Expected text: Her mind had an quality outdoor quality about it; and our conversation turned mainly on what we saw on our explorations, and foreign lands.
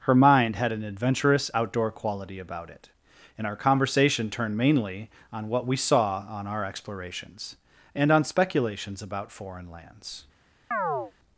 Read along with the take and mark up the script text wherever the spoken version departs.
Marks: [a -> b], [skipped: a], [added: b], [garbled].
Her mind had an [quality -> adventurous] outdoor quality about it; and our conversation turned mainly on what we saw on our explorations, and [added: on speculations about] foreign lands.